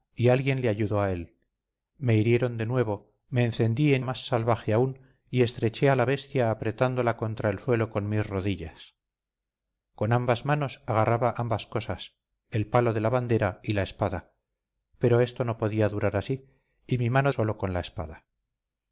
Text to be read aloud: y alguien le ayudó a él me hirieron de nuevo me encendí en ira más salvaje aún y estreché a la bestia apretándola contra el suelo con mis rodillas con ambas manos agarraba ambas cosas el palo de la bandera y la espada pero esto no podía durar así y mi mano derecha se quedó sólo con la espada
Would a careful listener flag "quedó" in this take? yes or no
yes